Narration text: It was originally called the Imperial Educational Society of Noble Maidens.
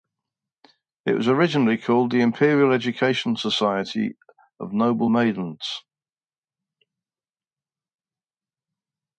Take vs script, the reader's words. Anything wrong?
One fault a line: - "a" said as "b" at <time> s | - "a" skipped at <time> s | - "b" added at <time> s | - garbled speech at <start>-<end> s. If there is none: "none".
none